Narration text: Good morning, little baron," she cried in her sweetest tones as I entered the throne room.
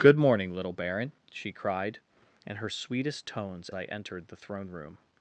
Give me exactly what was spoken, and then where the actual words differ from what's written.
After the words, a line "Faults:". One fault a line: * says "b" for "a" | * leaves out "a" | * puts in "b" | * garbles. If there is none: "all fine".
Good morning, little baron," she cried in her sweetest tones I entered the throne room.
Faults:
* leaves out "as"